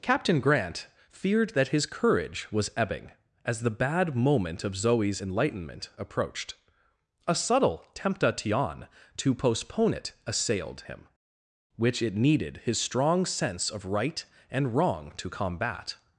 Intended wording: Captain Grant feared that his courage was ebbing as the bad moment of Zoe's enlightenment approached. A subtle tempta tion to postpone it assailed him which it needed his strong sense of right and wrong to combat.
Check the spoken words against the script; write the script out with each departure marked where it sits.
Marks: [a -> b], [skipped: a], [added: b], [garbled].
Captain Grant feared that his courage was ebbing as the bad moment of Zoe's enlightenment approached. A subtle tempta tion to postpone it assailed him which it needed his strong sense of right and wrong to combat.